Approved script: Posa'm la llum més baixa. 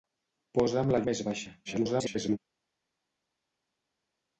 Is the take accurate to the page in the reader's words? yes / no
no